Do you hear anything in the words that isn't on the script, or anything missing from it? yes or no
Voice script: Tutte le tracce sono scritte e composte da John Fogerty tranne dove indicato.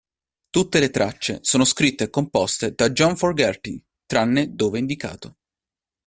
no